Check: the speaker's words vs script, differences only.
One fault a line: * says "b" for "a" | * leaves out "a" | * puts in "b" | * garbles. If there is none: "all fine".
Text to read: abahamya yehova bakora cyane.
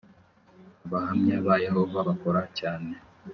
* puts in "ba"